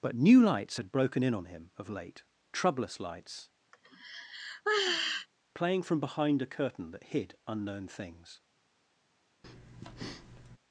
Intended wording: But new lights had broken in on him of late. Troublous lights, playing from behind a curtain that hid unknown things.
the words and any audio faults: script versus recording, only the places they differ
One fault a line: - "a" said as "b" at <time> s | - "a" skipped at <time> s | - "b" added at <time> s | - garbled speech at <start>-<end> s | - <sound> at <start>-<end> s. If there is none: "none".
- sigh at 3.7-5.3 s
- breath at 9.4-10.6 s